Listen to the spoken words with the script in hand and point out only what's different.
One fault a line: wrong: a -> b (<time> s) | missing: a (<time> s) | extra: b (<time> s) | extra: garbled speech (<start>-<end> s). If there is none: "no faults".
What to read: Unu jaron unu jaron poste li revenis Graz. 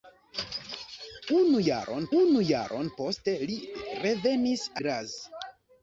no faults